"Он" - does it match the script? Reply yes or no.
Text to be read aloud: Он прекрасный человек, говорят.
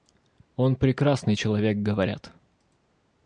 yes